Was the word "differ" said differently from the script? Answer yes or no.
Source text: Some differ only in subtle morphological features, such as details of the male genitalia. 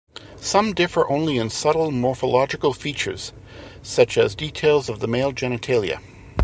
no